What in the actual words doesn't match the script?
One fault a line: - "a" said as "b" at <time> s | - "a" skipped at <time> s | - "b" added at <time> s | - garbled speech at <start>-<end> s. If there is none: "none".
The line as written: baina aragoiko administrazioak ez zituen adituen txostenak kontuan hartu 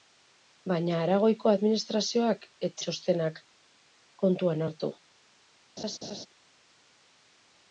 - "zituen adituen" skipped at 2.7 s